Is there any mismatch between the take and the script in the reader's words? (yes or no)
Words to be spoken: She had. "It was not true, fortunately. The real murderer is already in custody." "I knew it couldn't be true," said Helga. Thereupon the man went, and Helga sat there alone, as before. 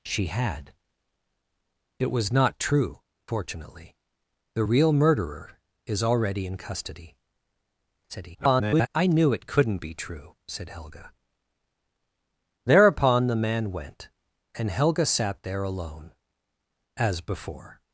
yes